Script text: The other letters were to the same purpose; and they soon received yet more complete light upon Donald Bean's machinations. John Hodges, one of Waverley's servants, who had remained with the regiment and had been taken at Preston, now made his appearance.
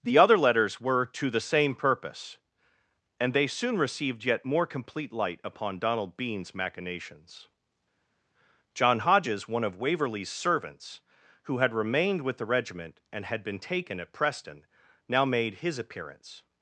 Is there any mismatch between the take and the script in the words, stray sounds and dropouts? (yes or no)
no